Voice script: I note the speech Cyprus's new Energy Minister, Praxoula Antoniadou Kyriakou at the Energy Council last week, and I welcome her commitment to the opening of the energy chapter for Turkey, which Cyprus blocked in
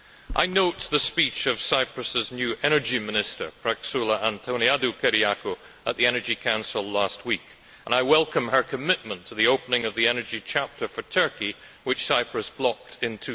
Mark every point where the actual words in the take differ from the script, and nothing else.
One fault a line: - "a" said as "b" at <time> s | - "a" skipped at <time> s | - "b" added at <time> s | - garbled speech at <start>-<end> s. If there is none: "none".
- "of" added at 1.4 s